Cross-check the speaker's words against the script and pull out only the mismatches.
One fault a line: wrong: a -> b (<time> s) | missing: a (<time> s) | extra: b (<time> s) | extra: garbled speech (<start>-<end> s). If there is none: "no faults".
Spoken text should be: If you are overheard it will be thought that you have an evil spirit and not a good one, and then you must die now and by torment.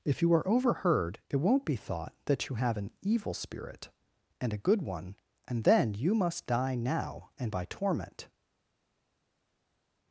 wrong: will -> won't (1.4 s)
missing: not (4.5 s)